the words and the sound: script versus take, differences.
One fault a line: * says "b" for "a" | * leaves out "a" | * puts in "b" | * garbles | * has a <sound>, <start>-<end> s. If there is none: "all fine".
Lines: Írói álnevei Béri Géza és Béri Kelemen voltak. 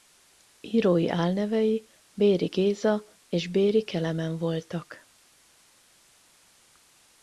all fine